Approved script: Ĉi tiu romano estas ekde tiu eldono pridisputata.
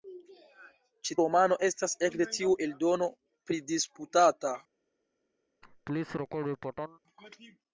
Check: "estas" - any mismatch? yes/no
no